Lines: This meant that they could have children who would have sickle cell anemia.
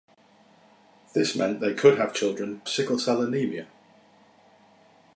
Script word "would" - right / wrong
wrong